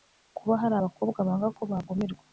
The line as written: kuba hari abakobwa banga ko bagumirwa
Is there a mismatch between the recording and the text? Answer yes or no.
no